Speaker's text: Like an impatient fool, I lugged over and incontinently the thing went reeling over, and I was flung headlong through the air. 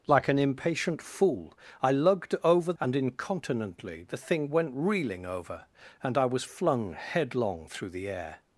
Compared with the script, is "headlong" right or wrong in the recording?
right